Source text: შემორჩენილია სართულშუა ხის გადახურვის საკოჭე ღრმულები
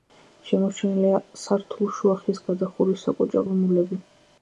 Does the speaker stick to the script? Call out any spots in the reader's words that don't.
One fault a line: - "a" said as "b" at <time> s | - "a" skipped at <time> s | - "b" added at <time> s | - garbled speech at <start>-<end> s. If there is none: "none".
none